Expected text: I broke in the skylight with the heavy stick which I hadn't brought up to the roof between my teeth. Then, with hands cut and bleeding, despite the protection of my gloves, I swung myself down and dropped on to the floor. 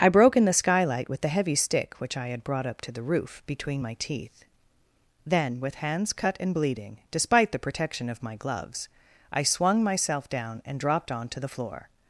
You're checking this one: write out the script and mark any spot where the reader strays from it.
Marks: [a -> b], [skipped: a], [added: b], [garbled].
I broke in the skylight with the heavy stick which I [hadn't -> had] brought up to the roof between my teeth. Then, with hands cut and bleeding, despite the protection of my gloves, I swung myself down and dropped on to the floor.